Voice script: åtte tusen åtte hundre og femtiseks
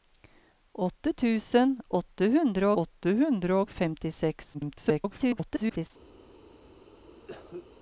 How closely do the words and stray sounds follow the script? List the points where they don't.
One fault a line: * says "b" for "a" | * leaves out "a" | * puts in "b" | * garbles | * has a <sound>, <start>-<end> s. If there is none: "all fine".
* puts in "åtte hundre"
* garbles
* has a cough, 7.2-7.7 s